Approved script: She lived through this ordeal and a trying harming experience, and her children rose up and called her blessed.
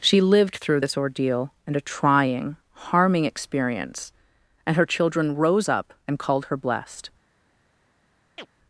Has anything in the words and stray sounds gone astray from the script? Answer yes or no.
yes